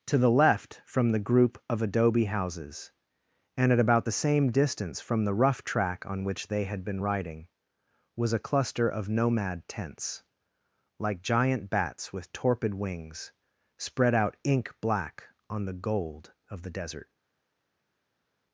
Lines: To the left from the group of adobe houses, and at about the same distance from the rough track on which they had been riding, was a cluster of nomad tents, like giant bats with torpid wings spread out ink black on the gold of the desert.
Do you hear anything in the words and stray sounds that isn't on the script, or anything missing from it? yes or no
no